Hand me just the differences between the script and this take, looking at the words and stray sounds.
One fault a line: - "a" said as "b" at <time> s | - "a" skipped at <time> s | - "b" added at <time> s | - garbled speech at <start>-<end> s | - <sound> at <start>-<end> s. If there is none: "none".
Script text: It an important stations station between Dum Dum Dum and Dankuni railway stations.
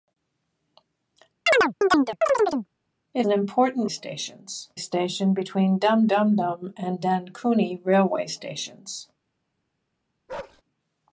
- chirp at 1.5-2.7 s
- bark at 10.3-10.6 s